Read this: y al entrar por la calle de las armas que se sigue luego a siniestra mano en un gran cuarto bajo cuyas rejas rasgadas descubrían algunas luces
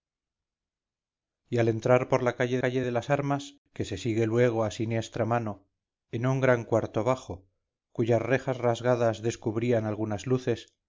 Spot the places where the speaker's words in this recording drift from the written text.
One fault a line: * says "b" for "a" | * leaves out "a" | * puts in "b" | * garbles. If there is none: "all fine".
* puts in "calle"